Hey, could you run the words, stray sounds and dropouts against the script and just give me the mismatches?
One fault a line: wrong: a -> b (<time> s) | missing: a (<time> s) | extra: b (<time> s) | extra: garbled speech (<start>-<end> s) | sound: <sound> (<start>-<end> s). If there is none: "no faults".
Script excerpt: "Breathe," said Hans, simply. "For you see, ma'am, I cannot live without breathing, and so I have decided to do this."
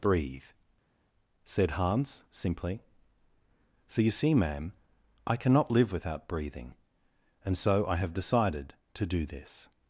no faults